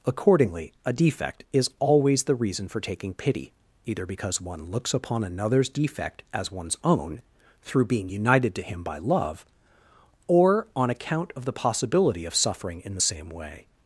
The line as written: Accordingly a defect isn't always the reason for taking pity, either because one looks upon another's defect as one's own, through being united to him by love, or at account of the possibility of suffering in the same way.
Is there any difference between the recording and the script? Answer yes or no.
yes